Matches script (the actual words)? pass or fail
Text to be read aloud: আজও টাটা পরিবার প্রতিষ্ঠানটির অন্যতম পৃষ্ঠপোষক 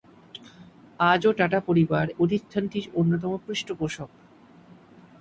pass